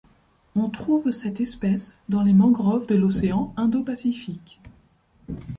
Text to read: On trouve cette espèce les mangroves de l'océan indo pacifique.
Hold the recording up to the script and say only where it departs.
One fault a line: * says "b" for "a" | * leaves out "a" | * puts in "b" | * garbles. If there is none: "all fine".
* puts in "dans"